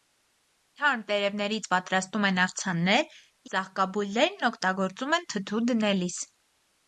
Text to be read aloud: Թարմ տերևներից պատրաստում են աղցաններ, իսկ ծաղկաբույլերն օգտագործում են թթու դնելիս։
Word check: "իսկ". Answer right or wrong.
wrong